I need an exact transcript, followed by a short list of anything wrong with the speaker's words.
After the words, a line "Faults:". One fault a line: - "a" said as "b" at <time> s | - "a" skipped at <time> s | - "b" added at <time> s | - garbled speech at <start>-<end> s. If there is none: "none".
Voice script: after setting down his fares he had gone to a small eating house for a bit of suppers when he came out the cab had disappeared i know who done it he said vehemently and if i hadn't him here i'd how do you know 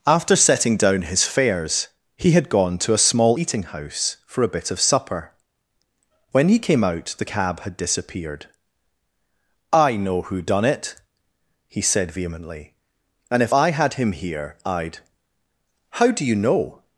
after setting down his fares he had gone to a small eating house for a bit of supper when he came out the cab had disappeared i know who done it he said vehemently and if i had him here i'd how do you know
Faults:
- "suppers" said as "supper" at 4.8 s
- "hadn't" said as "had" at 13.7 s